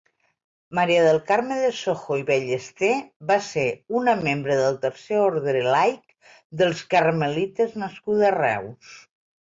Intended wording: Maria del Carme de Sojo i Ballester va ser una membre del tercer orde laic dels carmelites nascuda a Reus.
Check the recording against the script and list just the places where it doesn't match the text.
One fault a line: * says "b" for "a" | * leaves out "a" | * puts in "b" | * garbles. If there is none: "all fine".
all fine